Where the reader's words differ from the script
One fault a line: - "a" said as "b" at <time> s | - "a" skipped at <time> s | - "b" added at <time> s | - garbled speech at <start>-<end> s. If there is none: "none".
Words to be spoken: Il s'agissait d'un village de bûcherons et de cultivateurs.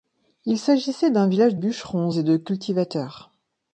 - "de" skipped at 1.6 s